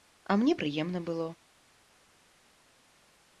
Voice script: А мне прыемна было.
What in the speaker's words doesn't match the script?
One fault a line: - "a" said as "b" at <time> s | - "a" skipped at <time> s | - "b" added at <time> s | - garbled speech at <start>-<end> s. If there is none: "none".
none